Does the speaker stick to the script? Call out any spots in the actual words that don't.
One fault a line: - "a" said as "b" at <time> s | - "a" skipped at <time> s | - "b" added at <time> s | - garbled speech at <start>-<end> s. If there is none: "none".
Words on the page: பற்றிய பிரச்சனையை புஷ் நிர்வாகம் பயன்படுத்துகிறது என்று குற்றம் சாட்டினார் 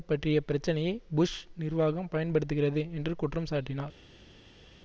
none